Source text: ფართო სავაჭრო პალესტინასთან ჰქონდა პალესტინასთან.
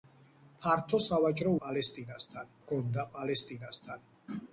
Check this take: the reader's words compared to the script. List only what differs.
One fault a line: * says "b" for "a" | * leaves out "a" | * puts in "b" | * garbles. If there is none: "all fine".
all fine